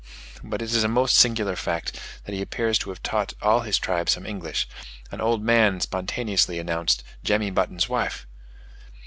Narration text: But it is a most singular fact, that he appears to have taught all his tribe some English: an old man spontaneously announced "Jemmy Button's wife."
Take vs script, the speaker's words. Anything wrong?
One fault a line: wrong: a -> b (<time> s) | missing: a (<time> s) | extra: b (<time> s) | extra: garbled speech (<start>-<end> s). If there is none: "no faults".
no faults